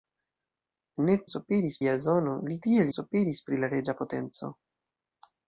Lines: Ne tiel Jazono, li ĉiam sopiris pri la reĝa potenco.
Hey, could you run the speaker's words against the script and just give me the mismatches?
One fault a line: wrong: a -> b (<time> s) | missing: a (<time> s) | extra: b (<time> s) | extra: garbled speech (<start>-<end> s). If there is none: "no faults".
wrong: tiel -> sopiris (1.3 s)
wrong: ĉiam -> tiel (2.7 s)